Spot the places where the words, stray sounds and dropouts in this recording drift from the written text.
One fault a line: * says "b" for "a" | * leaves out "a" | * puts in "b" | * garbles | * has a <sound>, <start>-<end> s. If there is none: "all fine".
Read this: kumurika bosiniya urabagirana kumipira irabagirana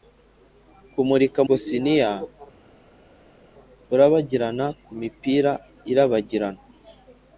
all fine